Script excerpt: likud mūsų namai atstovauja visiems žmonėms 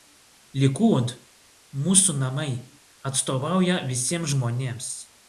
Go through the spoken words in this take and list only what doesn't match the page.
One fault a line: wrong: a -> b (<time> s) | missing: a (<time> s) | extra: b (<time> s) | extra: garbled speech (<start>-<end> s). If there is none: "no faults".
no faults